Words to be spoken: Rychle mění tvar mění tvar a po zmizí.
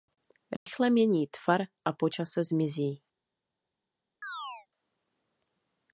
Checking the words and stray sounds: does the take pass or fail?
fail